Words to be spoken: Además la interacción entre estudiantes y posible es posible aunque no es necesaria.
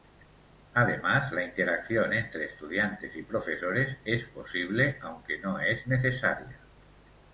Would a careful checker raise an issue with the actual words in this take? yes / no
yes